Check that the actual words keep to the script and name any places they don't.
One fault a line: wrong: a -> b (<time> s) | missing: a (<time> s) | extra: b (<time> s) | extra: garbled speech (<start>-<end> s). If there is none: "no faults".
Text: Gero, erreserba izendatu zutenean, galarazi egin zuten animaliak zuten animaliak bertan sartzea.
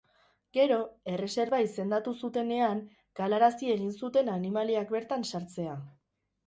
missing: zuten animaliak (5.0 s)